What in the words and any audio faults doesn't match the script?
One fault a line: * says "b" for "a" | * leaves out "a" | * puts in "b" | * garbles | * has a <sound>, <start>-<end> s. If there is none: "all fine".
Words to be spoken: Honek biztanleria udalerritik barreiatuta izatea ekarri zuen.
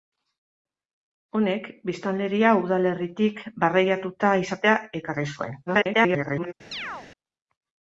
* garbles
* has a chirp, 6.7-7.1 s